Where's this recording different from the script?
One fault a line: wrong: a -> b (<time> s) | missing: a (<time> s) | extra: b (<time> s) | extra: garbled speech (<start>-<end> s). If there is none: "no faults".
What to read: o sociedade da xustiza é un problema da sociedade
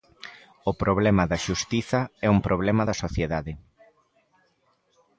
wrong: sociedade -> problema (0.8 s)